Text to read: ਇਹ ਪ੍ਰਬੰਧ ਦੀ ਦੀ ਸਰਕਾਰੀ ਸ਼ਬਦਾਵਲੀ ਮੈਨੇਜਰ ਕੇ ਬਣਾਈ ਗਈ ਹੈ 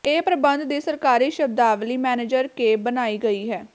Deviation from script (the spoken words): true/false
true